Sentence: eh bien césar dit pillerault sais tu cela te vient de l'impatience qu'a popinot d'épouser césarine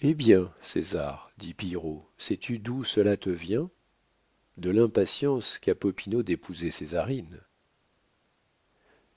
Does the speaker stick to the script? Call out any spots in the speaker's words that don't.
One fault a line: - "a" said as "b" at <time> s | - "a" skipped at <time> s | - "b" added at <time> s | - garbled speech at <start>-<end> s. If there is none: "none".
- "d'où" added at 2.6 s